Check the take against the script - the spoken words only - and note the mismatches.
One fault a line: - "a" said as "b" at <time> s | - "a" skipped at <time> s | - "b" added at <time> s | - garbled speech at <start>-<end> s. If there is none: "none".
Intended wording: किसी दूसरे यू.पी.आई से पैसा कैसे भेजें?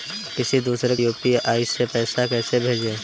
none